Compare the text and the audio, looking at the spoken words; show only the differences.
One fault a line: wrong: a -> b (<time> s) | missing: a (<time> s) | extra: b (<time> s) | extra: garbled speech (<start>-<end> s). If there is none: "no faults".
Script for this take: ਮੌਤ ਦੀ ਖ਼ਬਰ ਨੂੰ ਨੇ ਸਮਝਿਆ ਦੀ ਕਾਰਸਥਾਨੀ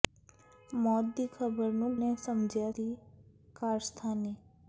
no faults